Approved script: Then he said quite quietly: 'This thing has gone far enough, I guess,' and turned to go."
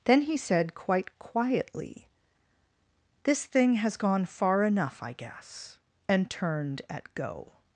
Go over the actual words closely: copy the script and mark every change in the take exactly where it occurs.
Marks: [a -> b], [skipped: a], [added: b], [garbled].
Then he said quite quietly: 'This thing has gone far enough, I guess,' and turned [to -> at] go."